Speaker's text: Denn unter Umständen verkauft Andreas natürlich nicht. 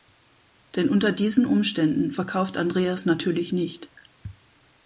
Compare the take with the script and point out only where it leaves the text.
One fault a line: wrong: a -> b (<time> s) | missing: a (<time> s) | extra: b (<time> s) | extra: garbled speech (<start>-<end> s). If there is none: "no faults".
extra: diesen (1.1 s)